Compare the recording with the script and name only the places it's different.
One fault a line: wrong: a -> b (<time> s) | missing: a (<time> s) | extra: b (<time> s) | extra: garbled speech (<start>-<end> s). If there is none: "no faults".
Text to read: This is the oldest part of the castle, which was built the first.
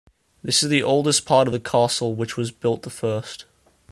no faults